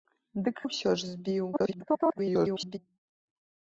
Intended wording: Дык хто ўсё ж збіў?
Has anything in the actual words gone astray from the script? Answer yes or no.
yes